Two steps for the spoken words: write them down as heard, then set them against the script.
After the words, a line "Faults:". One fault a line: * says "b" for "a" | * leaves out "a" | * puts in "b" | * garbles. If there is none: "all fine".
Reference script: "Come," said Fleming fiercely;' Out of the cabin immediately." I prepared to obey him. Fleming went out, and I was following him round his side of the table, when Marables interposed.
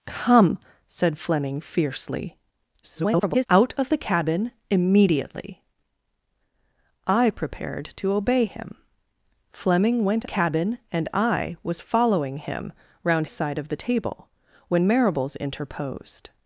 "Come," said Fleming fiercely;' [garbled] Out of the cabin immediately." I prepared to obey him. Fleming went cabin, and I was following him round side of the table, when Marables interposed.
Faults:
* garbles
* says "cabin" for "out"
* leaves out "his"